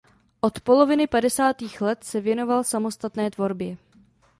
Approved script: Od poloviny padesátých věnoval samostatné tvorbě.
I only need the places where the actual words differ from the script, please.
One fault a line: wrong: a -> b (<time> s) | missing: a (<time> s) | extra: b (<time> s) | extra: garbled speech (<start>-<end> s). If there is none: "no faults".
extra: let se (1.8 s)